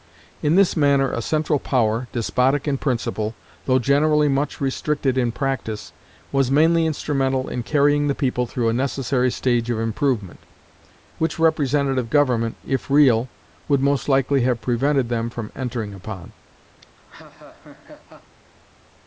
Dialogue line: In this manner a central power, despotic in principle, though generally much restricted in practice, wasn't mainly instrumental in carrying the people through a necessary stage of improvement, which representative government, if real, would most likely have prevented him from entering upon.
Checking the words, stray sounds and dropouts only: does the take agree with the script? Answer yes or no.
no